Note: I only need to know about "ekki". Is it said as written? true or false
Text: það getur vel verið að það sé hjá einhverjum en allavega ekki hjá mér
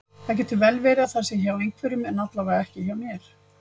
true